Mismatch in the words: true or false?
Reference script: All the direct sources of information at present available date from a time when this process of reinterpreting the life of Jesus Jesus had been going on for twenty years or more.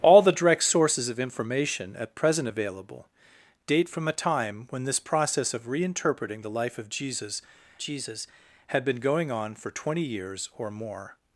false